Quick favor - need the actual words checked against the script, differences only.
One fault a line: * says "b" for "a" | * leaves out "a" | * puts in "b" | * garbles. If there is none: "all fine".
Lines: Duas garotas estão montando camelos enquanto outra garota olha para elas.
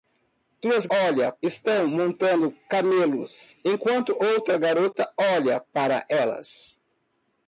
* says "olha" for "garotas"